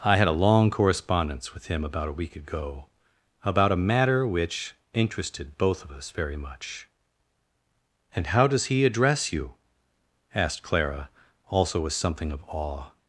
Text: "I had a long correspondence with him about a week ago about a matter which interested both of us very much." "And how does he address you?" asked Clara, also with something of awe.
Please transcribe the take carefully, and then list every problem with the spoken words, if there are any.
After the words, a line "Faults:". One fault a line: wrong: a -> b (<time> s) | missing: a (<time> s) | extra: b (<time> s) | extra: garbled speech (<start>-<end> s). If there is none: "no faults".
"I had a long correspondence with him about a week ago about a matter which interested both of us very much." "And how does he address you?" asked Clara, also with something of awe.
Faults:
no faults